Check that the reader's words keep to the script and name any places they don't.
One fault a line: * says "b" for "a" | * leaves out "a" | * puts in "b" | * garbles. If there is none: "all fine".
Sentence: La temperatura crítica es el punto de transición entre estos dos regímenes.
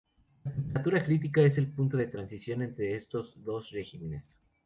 all fine